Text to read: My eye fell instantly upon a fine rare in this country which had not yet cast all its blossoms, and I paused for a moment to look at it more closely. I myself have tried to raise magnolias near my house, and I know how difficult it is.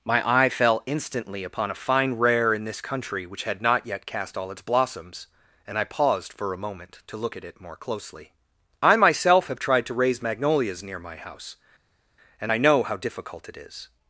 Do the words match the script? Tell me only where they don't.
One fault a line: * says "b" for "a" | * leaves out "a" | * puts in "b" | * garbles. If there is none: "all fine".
all fine